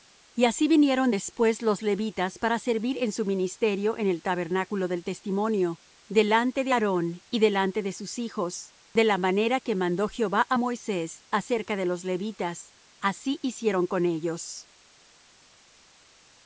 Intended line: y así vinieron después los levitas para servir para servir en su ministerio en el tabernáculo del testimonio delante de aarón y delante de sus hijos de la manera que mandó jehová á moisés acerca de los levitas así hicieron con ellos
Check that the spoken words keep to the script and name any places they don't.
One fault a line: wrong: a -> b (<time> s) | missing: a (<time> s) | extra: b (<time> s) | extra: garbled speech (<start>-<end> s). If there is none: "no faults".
missing: para servir (3.0 s)